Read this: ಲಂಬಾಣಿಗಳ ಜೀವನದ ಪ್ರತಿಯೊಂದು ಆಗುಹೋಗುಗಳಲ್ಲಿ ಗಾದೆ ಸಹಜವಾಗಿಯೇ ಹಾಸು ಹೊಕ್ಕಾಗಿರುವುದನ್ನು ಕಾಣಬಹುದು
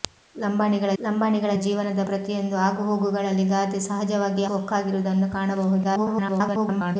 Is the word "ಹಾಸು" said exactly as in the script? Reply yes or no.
no